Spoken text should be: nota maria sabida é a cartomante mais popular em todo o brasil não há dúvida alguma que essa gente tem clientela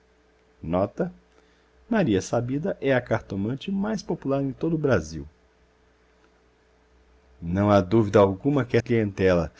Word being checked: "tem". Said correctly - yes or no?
no